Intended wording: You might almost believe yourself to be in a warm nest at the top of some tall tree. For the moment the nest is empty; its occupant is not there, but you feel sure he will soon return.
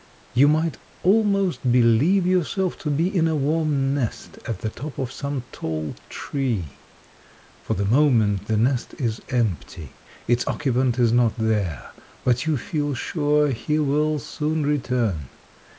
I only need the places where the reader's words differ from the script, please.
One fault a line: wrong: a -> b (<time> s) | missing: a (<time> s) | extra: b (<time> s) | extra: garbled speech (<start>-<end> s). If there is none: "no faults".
no faults